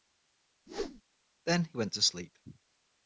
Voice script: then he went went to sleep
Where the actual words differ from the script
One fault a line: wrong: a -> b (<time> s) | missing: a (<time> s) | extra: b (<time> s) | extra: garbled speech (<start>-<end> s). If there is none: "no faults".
missing: went (1.9 s)